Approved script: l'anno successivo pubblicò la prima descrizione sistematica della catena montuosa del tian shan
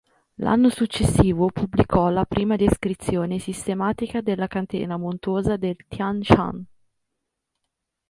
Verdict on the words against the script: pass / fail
pass